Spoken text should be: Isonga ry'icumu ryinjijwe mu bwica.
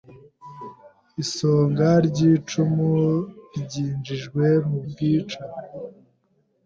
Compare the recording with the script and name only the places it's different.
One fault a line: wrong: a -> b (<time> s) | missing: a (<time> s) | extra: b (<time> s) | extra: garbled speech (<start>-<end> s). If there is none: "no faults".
no faults